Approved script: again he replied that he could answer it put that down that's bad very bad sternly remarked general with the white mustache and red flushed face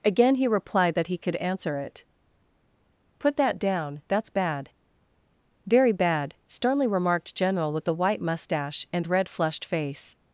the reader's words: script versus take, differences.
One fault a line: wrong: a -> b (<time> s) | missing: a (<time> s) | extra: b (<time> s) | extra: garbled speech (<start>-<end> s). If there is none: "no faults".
no faults